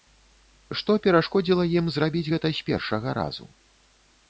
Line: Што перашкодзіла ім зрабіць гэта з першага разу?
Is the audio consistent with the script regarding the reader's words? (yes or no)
yes